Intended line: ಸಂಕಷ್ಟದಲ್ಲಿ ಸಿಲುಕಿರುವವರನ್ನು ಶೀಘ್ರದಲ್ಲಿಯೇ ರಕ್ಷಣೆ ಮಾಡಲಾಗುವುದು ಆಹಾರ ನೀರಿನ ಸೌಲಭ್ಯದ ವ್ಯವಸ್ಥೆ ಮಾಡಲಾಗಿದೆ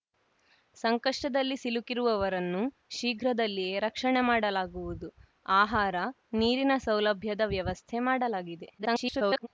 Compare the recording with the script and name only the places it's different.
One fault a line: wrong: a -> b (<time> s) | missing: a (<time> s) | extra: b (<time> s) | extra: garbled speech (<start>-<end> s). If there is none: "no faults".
extra: garbled speech (8.8-9.5 s)